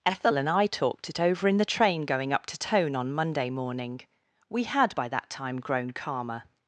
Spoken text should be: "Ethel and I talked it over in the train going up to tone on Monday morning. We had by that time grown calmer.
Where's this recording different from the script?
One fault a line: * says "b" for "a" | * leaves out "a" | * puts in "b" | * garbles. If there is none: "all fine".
all fine